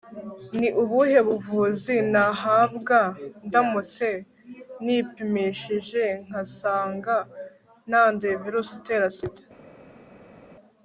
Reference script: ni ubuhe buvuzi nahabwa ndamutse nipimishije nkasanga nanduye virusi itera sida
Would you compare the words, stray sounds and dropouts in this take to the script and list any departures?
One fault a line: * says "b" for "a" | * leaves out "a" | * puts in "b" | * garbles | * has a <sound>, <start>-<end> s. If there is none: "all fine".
all fine